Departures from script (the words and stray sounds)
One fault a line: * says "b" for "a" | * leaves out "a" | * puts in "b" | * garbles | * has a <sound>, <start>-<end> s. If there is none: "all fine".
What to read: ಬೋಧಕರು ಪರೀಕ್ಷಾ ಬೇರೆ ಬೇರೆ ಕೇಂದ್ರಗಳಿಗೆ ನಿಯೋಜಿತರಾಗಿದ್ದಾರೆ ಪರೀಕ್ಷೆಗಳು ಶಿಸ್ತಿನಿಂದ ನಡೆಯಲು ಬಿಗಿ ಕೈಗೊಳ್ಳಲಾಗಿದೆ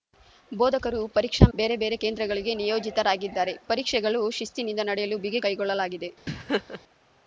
* has a laugh, 6.3-6.8 s